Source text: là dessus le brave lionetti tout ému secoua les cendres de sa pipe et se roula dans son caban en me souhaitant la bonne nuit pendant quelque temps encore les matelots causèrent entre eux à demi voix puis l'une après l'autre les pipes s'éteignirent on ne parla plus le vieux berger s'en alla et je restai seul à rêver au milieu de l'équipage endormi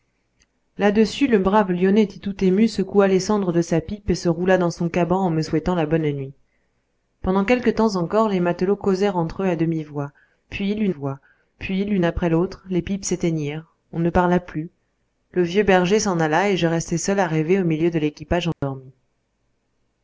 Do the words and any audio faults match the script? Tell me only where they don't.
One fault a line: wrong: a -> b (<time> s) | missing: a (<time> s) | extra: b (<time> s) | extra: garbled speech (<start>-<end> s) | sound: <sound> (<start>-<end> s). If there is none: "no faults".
extra: voix puis l'une (10.9 s)
sound: dropout (18.5-18.6 s)